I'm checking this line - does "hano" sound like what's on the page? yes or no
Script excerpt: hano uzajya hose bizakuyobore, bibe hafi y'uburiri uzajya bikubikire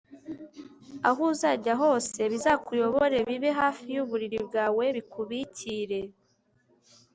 no